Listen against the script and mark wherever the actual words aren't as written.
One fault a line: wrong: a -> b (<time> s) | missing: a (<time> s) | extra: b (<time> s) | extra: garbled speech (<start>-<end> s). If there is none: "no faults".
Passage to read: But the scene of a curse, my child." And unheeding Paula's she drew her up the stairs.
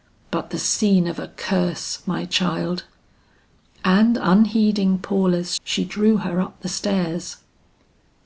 no faults